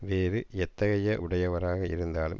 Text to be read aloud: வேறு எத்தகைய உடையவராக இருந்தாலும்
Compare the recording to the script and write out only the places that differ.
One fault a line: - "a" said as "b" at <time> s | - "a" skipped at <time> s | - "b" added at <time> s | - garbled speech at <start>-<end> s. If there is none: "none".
none